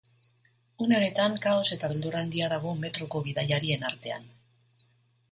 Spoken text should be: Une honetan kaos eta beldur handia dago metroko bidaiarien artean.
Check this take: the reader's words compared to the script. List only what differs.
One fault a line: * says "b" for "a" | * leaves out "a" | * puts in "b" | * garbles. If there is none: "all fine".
all fine